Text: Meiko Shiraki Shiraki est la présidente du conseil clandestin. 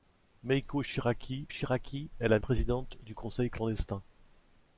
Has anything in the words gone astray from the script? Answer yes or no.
no